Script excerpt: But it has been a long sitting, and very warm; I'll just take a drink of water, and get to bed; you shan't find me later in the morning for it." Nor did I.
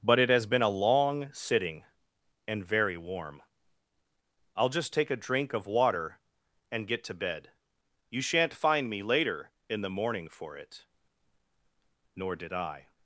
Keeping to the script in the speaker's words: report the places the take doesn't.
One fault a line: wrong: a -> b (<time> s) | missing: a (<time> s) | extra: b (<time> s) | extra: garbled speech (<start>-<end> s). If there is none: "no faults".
no faults